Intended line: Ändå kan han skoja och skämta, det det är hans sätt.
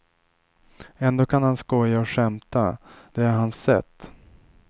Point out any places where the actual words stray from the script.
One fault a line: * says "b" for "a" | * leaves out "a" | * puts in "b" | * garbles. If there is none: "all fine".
* leaves out "det"